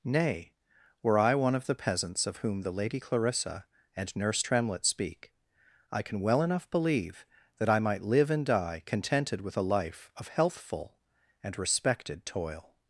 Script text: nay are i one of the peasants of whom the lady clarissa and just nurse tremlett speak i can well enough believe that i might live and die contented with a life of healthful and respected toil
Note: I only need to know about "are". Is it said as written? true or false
false